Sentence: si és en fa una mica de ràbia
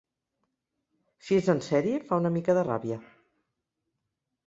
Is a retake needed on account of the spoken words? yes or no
yes